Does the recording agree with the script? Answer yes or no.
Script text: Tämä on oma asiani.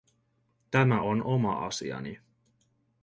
yes